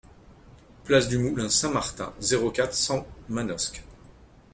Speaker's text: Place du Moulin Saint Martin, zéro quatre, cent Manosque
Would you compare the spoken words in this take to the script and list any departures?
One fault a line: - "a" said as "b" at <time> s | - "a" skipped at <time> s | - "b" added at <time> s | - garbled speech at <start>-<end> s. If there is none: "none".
none